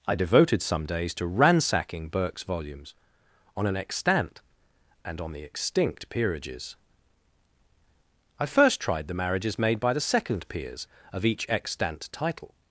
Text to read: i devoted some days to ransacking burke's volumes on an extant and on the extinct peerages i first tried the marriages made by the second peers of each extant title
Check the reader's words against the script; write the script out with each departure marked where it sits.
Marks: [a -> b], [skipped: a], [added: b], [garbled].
i devoted some days to ransacking burke's volumes on an extant and on the extinct peerages i first tried the marriages made by the second peers of each extant title